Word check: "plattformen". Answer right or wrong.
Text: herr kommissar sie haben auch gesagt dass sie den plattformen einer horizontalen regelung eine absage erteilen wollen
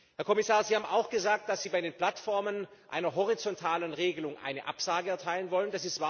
right